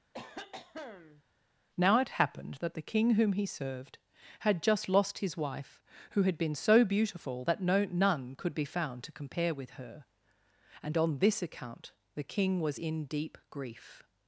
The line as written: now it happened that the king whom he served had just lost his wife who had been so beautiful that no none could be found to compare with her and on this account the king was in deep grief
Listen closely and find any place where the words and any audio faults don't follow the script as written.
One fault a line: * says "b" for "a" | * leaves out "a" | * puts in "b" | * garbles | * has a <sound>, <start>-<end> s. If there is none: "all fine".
* has a cough, 0.1-1.2 s